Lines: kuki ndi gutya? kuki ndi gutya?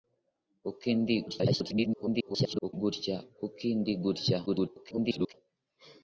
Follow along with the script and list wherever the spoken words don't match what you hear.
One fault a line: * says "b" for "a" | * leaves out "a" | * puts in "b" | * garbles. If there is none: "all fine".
* garbles
* garbles